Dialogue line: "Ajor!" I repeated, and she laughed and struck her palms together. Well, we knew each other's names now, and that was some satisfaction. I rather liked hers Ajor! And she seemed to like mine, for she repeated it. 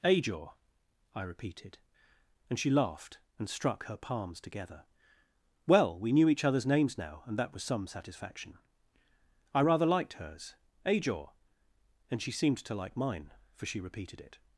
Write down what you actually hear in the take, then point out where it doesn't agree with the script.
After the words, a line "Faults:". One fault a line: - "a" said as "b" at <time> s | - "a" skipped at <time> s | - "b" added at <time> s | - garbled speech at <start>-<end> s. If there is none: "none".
"Ajor!" I repeated, and she laughed and struck her palms together. Well, we knew each other's names now, and that was some satisfaction. I rather liked hers Ajor! And she seemed to like mine, for she repeated it.
Faults:
none